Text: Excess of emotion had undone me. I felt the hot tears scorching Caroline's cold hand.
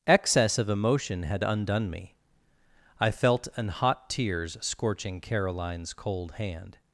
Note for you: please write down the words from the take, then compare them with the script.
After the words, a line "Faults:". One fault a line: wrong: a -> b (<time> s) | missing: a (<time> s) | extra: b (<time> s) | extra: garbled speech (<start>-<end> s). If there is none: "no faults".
Excess of emotion had undone me. I felt an hot tears scorching Caroline's cold hand.
Faults:
wrong: the -> an (3.5 s)